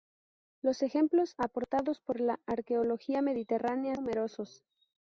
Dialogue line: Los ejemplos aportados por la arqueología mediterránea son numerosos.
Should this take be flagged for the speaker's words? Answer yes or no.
yes